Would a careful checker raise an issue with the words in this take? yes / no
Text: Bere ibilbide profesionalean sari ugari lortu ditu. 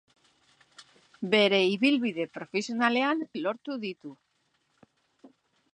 yes